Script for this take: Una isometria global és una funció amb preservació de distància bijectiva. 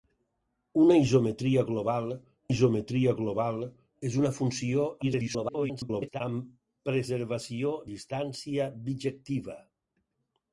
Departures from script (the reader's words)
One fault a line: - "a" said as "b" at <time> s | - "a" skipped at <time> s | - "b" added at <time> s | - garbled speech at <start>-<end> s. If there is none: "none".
- "isometria global" added at 2.5 s
- garbled speech at 5.0-6.2 s
- "de" skipped at 7.8 s